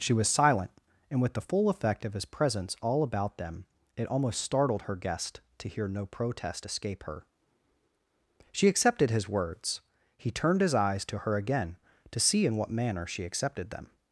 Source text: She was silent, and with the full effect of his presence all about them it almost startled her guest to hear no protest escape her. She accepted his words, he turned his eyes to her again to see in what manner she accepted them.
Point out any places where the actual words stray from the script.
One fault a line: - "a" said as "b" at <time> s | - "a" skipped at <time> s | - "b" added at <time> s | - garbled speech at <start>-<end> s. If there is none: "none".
none